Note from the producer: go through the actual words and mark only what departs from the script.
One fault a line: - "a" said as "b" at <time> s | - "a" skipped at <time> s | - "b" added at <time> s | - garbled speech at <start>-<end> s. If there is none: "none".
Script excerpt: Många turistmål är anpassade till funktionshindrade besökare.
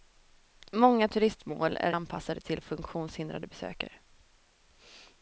none